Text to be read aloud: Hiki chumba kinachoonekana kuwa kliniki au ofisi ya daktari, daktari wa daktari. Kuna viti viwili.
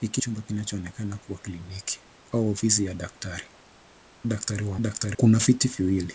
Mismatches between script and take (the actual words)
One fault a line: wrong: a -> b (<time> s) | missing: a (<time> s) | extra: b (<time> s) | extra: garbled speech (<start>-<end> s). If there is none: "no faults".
no faults